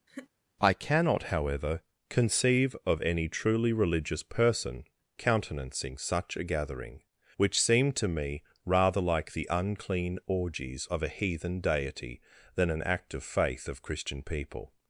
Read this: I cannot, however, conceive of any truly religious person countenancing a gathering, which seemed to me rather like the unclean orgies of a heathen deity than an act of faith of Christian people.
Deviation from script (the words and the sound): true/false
true